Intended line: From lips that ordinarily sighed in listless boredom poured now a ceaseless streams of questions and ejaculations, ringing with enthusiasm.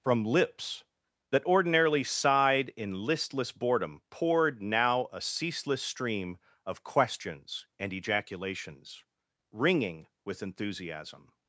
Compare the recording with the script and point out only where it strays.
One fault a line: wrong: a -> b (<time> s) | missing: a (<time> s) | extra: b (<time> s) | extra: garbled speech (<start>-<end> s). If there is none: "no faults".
wrong: streams -> stream (5.8 s)